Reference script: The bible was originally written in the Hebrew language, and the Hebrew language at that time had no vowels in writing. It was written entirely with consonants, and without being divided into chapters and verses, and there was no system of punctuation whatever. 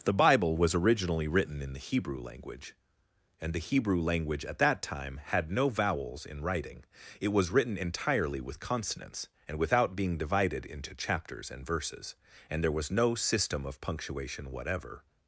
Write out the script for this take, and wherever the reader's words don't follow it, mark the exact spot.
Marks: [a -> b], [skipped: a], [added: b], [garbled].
The bible was originally written in the Hebrew language, and the Hebrew language at that time had no vowels in writing. It was written entirely with consonants, and without being divided into chapters and verses, and there was no system of punctuation whatever.